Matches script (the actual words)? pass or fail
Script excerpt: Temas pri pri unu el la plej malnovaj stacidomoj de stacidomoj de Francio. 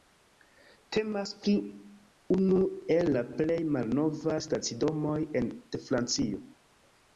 fail